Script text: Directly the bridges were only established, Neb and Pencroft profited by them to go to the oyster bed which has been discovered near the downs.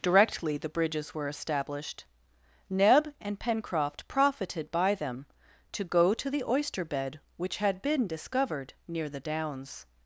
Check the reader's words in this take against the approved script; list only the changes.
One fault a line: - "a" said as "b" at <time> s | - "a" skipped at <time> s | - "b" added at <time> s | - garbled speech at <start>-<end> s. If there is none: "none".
- "only" skipped at 1.3 s
- "has" said as "had" at 7.6 s